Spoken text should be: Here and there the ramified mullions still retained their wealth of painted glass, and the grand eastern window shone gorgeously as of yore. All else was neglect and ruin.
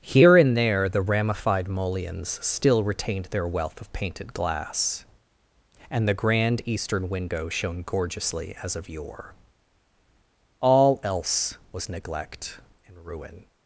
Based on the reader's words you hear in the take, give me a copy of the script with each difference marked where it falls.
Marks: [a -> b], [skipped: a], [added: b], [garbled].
Here and there the ramified mullions still retained their wealth of painted glass, and the grand eastern window shone gorgeously as of yore. All else was neglect and ruin.